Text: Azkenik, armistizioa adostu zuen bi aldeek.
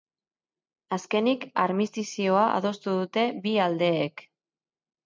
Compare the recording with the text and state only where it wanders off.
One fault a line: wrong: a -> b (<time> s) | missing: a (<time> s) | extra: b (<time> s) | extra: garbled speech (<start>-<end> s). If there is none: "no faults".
wrong: zuen -> dute (3.0 s)